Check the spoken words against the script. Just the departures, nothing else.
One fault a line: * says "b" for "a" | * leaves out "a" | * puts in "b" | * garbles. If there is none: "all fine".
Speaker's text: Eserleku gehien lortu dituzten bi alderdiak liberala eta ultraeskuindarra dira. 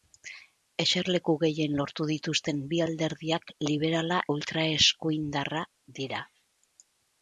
* leaves out "eta"